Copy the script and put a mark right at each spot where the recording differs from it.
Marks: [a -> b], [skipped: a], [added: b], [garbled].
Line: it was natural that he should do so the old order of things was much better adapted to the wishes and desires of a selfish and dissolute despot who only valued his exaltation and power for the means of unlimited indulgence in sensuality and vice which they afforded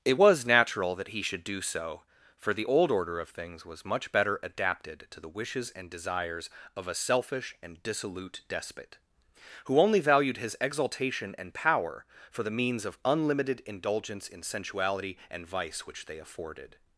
it was natural that he should do so [added: for] the old order of things was much better adapted to the wishes and desires of a selfish and dissolute despot who only valued his exaltation and power for the means of unlimited indulgence in sensuality and vice which they afforded